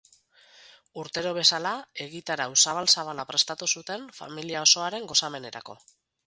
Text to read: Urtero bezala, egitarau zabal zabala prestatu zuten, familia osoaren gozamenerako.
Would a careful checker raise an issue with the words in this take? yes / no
no